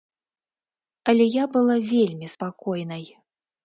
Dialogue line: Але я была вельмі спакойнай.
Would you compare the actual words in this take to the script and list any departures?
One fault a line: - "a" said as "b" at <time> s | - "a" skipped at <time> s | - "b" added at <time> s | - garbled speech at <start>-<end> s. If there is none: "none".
none